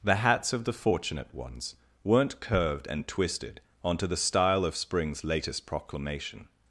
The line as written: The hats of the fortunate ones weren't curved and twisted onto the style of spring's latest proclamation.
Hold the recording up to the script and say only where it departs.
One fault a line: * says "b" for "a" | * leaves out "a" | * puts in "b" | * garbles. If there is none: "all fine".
all fine